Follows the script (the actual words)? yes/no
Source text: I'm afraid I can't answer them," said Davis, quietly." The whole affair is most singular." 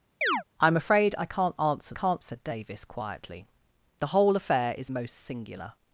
no